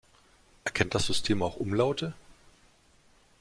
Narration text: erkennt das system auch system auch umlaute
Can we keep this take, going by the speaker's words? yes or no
no